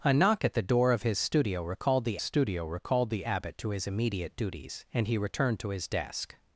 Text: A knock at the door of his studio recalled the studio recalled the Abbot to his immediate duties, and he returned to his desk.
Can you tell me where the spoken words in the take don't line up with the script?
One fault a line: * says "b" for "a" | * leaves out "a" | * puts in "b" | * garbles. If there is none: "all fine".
all fine